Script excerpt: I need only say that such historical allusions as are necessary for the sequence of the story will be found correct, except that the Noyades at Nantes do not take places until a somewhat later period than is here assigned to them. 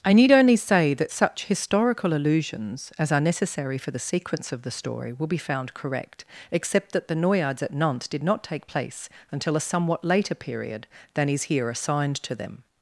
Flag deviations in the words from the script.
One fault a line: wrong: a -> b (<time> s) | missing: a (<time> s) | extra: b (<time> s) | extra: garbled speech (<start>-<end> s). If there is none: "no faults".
wrong: do -> did (8.1 s)
wrong: places -> place (8.6 s)